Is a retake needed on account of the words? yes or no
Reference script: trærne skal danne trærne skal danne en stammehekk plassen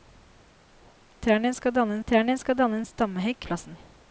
no